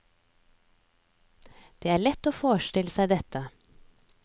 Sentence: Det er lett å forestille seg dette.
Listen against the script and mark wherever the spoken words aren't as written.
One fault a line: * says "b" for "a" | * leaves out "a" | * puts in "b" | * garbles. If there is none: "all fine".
all fine